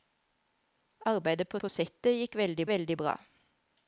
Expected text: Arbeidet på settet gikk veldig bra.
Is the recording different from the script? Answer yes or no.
yes